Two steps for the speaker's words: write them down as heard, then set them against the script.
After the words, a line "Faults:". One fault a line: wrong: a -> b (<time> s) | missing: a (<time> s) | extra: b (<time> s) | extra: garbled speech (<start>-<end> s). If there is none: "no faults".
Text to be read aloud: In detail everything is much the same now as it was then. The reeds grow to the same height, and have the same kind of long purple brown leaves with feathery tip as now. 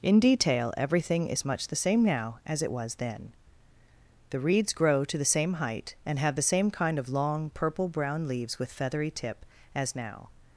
In detail everything is much the same now as it was then. The reeds grow to the same height, and have the same kind of long purple brown leaves with feathery tip as now.
Faults:
no faults